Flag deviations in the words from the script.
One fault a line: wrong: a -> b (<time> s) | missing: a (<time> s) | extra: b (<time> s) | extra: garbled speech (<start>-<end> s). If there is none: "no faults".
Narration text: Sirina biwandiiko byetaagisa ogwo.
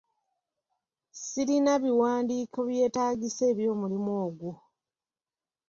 extra: eby'omulimu (3.5 s)